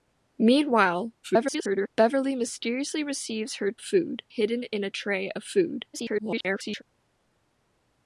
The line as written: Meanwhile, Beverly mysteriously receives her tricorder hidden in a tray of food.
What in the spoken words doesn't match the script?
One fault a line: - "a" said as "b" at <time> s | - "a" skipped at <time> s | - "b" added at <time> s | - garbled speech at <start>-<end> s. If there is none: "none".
- garbled speech at 1.2-1.9 s
- "tricorder" said as "food" at 3.8 s
- garbled speech at 5.9-6.8 s